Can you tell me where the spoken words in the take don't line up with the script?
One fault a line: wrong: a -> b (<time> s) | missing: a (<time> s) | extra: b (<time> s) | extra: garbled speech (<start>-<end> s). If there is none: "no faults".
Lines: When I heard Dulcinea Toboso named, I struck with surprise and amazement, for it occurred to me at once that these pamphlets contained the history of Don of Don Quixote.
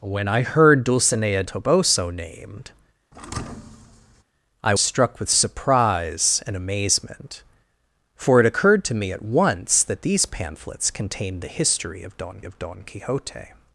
no faults